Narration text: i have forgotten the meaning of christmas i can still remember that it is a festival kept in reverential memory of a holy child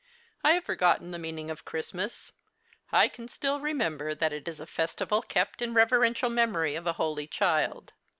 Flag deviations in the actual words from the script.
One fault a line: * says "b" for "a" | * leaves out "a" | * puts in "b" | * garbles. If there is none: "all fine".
all fine